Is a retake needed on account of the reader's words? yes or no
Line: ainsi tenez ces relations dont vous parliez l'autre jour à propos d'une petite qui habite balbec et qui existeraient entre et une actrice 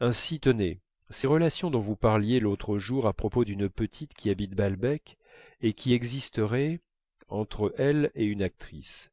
yes